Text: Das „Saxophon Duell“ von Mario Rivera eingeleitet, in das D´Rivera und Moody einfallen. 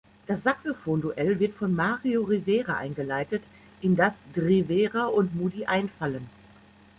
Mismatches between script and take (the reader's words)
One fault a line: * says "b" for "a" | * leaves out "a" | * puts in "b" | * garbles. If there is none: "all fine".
* puts in "wird"